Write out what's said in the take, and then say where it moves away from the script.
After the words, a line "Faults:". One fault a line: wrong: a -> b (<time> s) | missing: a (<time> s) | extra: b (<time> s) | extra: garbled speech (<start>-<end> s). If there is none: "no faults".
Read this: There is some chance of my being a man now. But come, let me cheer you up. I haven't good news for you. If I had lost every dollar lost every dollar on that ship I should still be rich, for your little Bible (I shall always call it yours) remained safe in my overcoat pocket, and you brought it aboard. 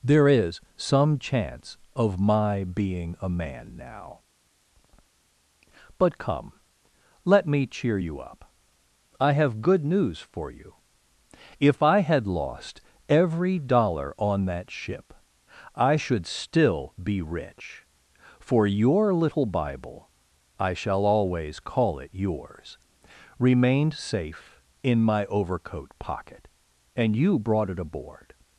There is some chance of my being a man now. But come, let me cheer you up. I have good news for you. If I had lost every dollar on that ship I should still be rich, for your little Bible (I shall always call it yours) remained safe in my overcoat pocket, and you brought it aboard.
Faults:
wrong: haven't -> have (9.3 s)
missing: lost every dollar (14.1 s)